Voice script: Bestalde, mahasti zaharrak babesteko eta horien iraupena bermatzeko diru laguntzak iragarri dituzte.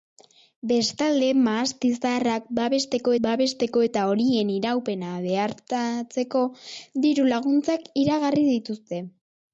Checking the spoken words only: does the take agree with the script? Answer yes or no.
no